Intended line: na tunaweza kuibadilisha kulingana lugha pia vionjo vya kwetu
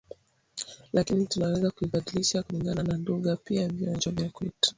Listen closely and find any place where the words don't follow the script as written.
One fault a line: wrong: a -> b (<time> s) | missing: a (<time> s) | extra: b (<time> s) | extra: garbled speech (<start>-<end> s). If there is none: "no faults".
wrong: na -> lakini (0.9 s)
extra: na (2.8 s)